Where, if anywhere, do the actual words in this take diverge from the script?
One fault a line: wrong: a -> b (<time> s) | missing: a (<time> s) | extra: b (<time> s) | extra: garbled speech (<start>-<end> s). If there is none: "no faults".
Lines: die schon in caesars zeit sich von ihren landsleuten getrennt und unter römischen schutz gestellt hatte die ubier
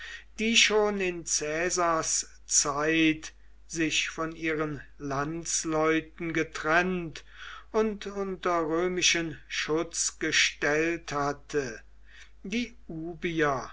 no faults